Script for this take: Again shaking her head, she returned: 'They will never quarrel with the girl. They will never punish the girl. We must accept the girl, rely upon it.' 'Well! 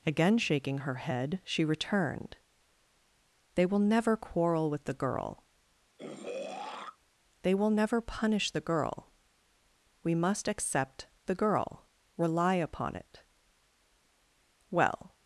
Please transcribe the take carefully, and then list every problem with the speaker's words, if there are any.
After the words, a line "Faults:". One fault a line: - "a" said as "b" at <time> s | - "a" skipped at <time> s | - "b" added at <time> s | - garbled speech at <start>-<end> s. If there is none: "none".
Again shaking her head, she returned: 'They will never quarrel with the girl. They will never punish the girl. We must accept the girl, rely upon it.' 'Well!
Faults:
none